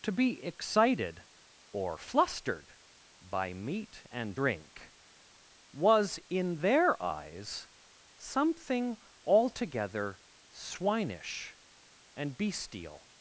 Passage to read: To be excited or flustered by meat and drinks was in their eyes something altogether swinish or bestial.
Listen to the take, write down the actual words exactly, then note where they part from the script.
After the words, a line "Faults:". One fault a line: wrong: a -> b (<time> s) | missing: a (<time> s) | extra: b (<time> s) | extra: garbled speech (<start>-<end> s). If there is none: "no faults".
To be excited or flustered by meat and drink was in their eyes something altogether swinish and bestial.
Faults:
wrong: drinks -> drink (4.3 s)
wrong: or -> and (12.1 s)